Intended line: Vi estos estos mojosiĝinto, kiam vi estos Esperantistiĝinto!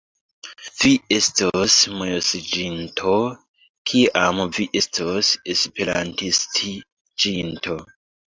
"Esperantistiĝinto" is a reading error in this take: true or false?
false